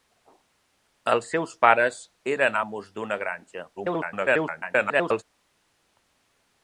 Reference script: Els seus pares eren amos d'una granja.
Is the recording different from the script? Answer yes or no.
yes